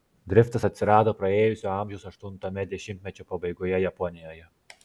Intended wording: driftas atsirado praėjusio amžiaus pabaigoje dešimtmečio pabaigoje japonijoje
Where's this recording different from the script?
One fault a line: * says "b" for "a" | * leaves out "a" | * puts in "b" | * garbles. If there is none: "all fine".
* says "aštuntame" for "pabaigoje"